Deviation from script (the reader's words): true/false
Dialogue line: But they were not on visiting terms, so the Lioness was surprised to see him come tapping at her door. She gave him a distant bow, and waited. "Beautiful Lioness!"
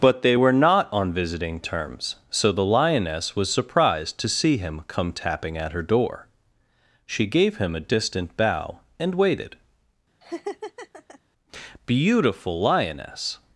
false